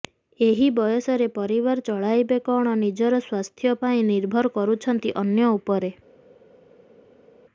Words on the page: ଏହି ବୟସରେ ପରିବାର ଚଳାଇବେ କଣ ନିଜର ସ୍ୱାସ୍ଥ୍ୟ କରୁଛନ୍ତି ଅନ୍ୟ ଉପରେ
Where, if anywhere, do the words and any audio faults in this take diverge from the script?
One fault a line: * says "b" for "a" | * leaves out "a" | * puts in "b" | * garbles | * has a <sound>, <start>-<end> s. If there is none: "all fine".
* puts in "ପାଇଁ ନିର୍ଭର"